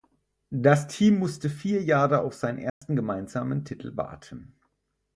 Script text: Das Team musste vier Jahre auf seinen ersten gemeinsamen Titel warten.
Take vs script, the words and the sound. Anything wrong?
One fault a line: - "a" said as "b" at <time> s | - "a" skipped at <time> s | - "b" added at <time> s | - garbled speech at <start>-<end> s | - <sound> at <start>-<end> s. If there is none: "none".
- dropout at 2.7-2.8 s